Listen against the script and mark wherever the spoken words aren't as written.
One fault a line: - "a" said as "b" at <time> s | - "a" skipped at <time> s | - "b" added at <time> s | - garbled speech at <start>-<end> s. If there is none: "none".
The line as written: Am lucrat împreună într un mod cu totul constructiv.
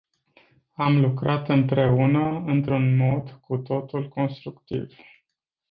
none